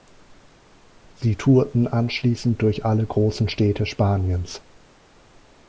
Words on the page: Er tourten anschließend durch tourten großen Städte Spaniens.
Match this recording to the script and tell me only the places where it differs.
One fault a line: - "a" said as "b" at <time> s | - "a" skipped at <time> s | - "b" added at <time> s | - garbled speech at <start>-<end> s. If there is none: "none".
- "Er" said as "Sie" at 1.2 s
- "tourten" said as "alle" at 2.8 s